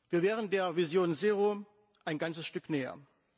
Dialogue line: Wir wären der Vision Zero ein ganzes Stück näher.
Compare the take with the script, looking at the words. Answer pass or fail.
pass